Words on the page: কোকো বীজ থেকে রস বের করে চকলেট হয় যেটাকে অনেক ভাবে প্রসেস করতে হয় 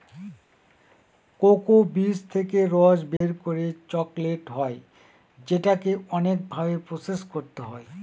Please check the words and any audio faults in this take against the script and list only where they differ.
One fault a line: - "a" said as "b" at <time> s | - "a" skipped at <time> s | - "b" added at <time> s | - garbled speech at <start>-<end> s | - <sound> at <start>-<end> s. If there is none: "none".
- dropout at 3.2-3.2 s